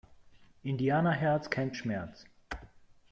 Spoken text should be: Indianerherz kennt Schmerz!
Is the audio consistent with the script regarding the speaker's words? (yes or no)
yes